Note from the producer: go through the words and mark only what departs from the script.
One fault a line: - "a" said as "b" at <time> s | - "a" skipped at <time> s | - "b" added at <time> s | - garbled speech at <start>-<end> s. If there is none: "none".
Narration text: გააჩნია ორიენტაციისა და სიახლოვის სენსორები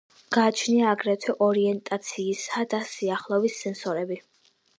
- "აგრეთვე" added at 0.9 s